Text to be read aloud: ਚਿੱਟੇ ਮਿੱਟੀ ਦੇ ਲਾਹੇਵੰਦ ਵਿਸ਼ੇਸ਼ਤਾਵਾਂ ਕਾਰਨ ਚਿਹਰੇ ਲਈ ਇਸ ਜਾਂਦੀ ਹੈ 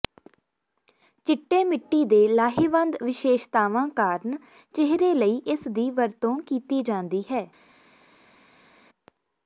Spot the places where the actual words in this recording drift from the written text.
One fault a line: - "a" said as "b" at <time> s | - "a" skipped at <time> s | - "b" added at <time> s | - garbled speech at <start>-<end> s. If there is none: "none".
- "ਦੀ ਵਰਤੋਂ ਕੀਤੀ" added at 5.7 s